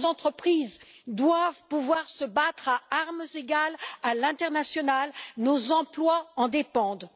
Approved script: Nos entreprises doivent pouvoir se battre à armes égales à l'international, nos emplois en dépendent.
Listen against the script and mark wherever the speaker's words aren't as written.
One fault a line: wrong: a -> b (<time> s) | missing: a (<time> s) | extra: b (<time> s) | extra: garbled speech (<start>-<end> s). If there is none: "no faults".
no faults